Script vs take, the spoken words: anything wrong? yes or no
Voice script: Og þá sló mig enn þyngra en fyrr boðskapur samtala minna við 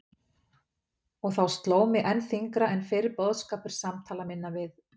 no